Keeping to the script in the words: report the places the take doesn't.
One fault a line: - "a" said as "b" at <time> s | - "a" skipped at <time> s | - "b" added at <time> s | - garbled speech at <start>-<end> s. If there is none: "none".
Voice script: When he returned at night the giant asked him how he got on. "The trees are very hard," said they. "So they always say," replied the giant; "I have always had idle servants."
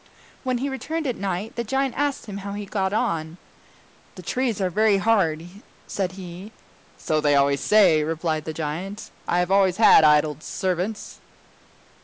- "they" said as "he" at 6.1 s